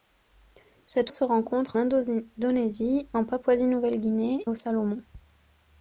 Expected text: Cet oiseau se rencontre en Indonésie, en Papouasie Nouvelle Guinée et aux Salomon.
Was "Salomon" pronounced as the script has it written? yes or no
yes